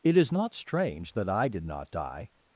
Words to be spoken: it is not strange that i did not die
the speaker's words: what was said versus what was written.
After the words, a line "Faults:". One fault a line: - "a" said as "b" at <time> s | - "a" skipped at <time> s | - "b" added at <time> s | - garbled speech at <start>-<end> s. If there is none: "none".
it is not strange that i did not die
Faults:
none